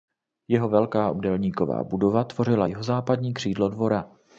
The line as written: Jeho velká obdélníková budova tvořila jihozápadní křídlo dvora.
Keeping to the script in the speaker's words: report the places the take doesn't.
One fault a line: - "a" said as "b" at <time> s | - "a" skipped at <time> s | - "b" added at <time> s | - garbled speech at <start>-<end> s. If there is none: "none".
none